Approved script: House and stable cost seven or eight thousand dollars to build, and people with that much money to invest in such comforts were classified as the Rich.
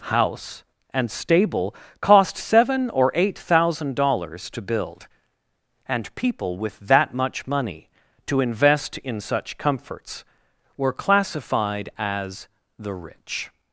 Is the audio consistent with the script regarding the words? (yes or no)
yes